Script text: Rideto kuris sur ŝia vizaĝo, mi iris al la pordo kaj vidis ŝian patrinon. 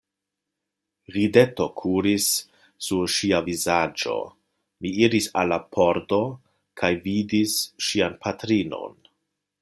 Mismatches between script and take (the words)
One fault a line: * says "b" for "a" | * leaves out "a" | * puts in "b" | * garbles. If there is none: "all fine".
all fine